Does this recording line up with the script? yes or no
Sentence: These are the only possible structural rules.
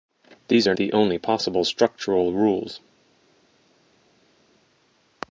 yes